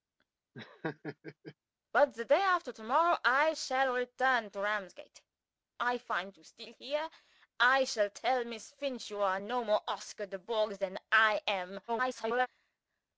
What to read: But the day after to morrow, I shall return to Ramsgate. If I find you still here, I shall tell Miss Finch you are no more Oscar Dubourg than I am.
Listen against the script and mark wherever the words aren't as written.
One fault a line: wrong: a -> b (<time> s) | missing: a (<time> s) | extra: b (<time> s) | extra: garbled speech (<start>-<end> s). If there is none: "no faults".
missing: If (5.2 s)
extra: garbled speech (11.9-12.5 s)